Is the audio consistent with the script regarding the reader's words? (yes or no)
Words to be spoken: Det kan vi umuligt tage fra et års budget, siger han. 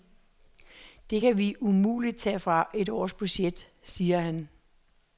yes